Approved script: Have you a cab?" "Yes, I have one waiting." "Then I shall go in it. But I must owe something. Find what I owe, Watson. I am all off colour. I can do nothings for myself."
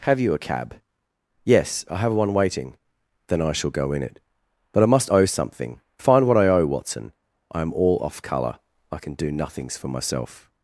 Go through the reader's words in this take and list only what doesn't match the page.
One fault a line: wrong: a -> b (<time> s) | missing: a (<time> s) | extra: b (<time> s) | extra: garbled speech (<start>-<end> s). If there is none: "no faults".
no faults